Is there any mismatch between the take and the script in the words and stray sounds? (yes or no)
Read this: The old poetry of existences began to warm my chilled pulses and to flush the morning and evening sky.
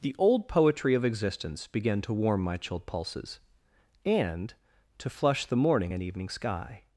yes